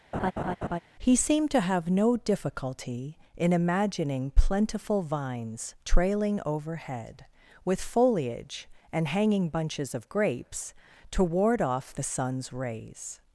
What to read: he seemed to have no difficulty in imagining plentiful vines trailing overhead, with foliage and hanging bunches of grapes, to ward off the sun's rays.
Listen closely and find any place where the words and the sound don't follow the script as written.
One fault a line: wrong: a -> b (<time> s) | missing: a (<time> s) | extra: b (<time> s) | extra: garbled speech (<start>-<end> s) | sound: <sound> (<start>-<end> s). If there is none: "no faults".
sound: laugh (0.1-0.8 s)